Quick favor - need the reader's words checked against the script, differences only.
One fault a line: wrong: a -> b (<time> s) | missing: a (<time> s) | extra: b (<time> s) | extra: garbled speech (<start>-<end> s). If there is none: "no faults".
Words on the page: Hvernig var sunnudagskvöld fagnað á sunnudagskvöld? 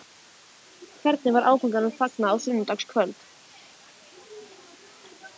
wrong: sunnudagskvöld -> áfanganum (1.5 s)